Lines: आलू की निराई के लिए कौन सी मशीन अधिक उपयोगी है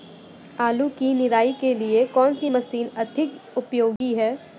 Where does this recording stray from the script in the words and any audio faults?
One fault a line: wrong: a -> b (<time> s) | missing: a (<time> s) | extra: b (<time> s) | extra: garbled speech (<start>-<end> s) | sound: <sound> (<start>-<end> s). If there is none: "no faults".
sound: dropout (4.0-4.0 s)